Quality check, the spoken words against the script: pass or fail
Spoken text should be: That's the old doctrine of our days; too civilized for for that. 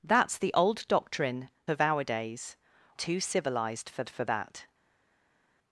pass